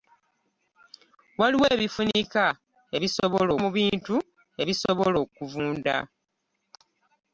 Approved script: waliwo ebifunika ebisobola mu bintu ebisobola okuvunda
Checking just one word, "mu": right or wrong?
right